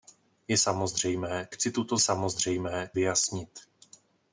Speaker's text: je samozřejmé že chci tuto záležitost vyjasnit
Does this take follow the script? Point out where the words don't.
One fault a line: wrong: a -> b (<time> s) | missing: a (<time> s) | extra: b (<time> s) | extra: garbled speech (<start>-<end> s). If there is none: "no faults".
missing: že (1.5 s)
wrong: záležitost -> samozřejmé (2.0 s)